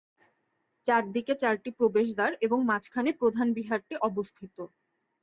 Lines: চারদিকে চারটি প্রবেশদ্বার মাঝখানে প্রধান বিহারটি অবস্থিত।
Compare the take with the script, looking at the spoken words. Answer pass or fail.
fail